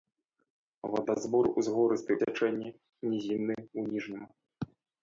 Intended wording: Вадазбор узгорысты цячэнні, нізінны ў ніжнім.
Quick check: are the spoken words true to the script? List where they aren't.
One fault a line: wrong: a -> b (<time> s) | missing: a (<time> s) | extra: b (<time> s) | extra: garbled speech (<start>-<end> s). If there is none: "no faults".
no faults